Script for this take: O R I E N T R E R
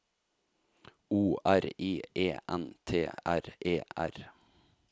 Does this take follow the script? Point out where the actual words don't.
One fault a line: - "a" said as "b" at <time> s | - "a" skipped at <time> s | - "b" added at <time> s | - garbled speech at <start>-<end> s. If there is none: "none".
none